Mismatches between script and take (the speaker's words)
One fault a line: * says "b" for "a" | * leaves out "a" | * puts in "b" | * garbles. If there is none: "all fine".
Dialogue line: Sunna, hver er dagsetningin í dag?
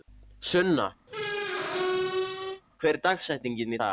all fine